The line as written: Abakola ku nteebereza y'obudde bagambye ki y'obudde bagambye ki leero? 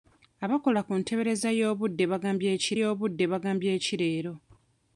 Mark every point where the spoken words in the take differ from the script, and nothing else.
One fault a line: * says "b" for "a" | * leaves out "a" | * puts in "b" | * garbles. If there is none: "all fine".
all fine